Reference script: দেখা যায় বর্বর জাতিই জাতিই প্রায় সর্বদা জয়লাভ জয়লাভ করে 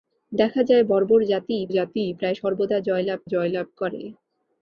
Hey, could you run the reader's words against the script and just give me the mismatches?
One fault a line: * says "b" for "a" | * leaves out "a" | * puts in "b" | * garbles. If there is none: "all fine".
all fine